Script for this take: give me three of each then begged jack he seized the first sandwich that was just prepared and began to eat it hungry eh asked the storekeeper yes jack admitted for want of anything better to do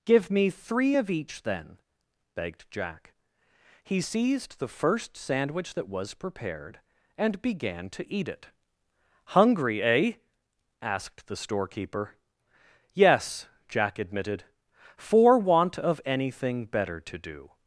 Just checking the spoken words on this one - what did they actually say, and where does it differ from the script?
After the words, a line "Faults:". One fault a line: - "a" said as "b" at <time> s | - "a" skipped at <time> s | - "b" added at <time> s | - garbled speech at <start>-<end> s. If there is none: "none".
give me three of each then begged jack he seized the first sandwich that was prepared and began to eat it hungry eh asked the storekeeper yes jack admitted for want of anything better to do
Faults:
- "just" skipped at 6.1 s